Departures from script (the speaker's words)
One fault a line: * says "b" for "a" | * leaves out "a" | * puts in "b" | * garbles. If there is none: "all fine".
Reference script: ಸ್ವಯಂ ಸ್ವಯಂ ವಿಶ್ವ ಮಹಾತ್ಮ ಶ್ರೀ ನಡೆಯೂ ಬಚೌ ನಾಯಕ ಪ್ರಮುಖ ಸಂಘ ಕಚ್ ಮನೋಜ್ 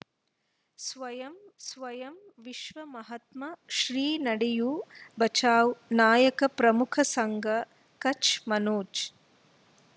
all fine